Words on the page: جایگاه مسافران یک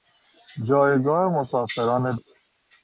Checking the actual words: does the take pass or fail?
pass